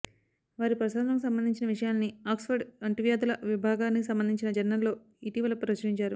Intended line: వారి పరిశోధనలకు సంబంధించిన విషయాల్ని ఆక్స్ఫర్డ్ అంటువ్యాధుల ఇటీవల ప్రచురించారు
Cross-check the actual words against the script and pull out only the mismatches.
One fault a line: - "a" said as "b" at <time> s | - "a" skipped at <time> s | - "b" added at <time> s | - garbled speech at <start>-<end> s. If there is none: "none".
- "విభాగానికి సంబంధించిన జర్నల్లో" added at 3.4 s